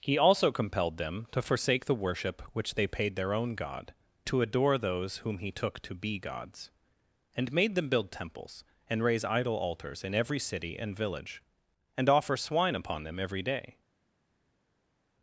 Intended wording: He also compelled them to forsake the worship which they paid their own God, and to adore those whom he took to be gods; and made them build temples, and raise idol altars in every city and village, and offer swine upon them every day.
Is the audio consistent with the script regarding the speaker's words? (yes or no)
no